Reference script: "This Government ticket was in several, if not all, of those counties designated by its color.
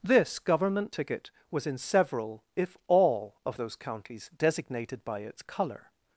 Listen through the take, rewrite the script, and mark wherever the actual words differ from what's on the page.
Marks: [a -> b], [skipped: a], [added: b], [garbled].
"This Government ticket was in several, if [skipped: not] all, of those counties designated by its color.